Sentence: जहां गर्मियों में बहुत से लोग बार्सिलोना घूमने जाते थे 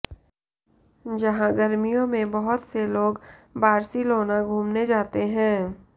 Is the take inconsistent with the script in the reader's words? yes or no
yes